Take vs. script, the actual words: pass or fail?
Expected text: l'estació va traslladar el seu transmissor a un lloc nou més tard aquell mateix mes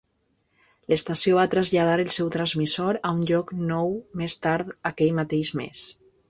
pass